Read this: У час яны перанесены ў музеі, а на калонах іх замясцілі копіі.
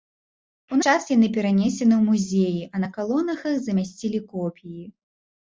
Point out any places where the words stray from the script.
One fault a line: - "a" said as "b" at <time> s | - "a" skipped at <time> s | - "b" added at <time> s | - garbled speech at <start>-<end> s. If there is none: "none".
none